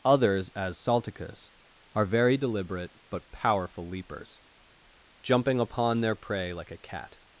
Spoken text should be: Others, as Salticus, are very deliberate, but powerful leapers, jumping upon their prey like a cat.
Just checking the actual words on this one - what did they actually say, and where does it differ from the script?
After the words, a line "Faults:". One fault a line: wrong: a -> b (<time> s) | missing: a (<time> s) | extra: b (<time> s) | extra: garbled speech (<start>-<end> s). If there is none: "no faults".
Others, as Salticus, are very deliberate, but powerful leapers, jumping upon their prey like a cat.
Faults:
no faults